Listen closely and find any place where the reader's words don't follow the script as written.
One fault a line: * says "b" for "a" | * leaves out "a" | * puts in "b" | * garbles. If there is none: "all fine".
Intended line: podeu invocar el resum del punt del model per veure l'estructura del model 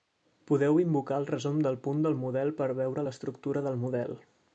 all fine